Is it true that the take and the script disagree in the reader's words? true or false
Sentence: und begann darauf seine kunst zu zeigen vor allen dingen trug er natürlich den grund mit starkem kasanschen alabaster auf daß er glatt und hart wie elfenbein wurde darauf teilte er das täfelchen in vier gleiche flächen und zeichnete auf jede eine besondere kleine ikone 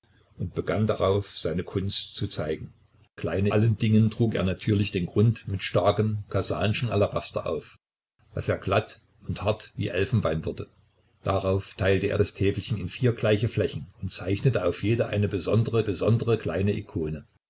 true